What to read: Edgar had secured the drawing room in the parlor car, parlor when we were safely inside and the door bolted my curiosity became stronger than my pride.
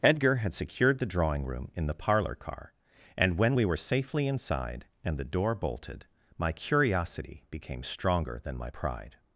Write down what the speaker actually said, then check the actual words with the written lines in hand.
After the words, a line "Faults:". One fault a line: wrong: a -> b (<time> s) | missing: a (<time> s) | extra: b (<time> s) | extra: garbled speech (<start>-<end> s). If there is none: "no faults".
Edgar had secured the drawing room in the parlor car, and when we were safely inside and the door bolted my curiosity became stronger than my pride.
Faults:
wrong: parlor -> and (3.2 s)